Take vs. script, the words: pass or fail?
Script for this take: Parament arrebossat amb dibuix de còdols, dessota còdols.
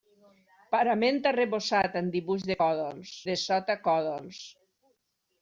pass